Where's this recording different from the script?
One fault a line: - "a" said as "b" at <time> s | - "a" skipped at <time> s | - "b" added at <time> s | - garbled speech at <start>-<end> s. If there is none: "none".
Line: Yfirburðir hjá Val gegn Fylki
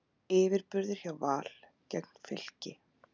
none